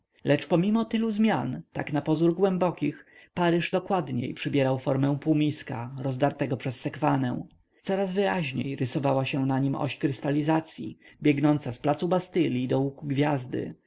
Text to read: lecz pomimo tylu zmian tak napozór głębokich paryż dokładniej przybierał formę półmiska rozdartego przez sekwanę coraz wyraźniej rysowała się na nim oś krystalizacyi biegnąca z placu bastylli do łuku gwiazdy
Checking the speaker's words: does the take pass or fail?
pass